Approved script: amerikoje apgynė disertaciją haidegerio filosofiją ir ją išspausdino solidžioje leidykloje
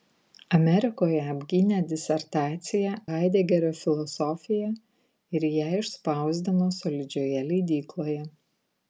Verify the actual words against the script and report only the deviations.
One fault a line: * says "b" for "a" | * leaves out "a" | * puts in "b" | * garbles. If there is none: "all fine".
all fine